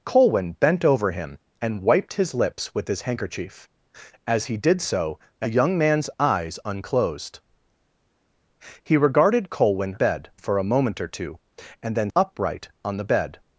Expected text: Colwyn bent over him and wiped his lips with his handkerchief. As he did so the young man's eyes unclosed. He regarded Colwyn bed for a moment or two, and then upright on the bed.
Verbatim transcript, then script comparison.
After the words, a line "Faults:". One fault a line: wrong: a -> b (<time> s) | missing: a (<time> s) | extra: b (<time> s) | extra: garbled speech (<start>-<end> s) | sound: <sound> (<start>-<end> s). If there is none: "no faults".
Colwyn bent over him and wiped his lips with his handkerchief. As he did so the young man's eyes unclosed. He regarded Colwyn bed for a moment or two, and then upright on the bed.
Faults:
no faults